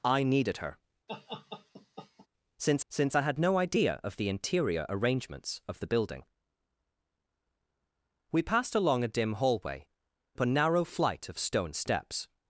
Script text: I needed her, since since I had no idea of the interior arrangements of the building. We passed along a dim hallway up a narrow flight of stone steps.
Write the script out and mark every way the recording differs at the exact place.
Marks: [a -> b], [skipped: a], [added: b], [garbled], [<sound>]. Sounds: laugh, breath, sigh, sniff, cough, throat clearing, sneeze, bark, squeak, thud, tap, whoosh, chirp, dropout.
I needed her, [laugh] since since I had no idea of the interior arrangements of the building. We passed along a dim hallway up a narrow flight of stone steps.